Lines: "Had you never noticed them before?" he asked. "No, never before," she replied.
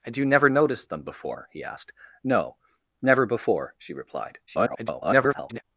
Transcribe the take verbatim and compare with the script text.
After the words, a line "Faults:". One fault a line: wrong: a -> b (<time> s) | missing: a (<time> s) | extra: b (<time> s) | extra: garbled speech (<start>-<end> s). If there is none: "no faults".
"Had you never noticed them before?" he asked. "No, never before," she replied. [garbled]
Faults:
extra: garbled speech (4.5-5.6 s)